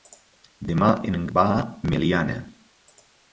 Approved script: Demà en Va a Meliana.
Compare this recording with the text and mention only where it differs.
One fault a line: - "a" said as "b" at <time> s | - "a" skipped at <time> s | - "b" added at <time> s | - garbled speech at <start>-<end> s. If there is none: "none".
none